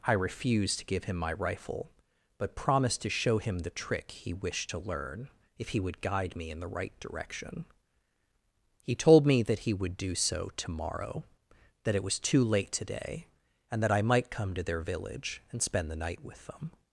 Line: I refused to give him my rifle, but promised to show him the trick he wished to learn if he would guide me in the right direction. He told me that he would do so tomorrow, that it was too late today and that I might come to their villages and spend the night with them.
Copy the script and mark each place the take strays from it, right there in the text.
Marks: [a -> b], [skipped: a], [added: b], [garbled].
I refused to give him my rifle, but promised to show him the trick he wished to learn if he would guide me in the right direction. He told me that he would do so tomorrow, that it was too late today and that I might come to their [villages -> village] and spend the night with them.